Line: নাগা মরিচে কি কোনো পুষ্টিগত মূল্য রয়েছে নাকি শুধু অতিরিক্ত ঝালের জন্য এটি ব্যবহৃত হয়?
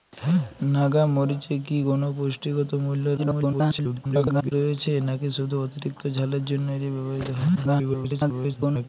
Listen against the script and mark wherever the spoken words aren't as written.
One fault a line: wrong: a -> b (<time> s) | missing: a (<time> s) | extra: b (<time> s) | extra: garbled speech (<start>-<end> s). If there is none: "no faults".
extra: garbled speech (3.2-4.5 s)
extra: garbled speech (7.6-8.9 s)